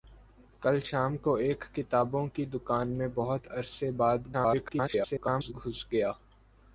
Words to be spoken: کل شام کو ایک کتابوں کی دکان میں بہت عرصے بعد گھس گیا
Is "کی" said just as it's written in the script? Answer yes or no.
yes